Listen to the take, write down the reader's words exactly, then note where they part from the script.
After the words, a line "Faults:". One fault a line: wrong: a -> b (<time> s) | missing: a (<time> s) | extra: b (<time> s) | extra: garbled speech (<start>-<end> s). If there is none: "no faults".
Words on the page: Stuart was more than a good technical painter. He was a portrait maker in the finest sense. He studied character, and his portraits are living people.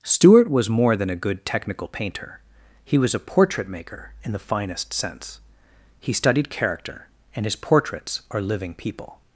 Stuart was more than a good technical painter. He was a portrait maker in the finest sense. He studied character, and his portraits are living people.
Faults:
no faults